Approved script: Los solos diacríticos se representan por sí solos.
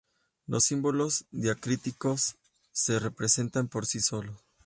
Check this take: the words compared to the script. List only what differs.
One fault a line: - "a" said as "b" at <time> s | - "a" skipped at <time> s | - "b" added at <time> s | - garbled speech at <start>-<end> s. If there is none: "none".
- "solos" said as "símbolos" at 0.6 s